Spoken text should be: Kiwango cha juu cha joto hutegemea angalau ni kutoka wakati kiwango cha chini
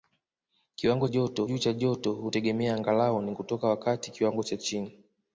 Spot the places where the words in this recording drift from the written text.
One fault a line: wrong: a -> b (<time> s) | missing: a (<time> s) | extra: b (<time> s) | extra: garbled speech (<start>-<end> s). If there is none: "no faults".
wrong: cha -> joto (1.1 s)